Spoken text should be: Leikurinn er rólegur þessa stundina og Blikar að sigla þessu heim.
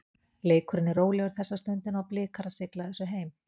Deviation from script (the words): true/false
false